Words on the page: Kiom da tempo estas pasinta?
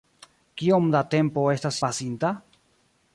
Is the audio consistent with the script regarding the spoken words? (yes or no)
yes